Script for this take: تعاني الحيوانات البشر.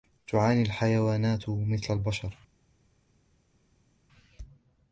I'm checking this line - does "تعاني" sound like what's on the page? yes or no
yes